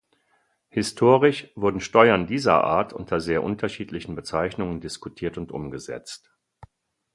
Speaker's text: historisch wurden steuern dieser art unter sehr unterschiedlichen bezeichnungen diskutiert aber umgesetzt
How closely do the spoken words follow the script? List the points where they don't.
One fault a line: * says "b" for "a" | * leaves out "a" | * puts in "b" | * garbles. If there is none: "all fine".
* says "und" for "aber"